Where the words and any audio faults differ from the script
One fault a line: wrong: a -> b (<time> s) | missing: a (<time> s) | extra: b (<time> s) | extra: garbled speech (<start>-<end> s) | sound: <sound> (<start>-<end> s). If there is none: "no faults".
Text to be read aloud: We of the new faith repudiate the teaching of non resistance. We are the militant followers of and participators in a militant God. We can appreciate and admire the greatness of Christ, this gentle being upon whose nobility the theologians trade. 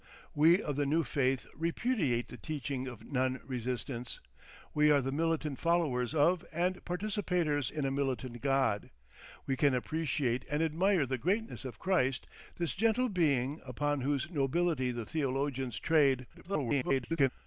extra: garbled speech (16.3-17.3 s)